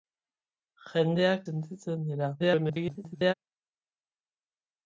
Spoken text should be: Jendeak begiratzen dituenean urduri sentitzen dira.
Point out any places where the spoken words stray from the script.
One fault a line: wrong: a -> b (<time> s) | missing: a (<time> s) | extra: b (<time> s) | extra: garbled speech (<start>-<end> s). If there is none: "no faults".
missing: begiratzen dituenean urduri (1.4 s)
extra: garbled speech (2.4-3.3 s)